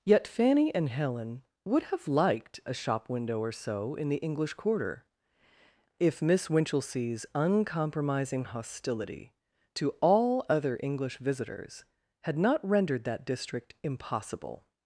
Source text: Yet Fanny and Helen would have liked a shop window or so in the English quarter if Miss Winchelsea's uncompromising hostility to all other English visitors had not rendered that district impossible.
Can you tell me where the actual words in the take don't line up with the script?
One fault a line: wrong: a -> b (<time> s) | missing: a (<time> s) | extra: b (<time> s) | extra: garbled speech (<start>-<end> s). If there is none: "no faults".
no faults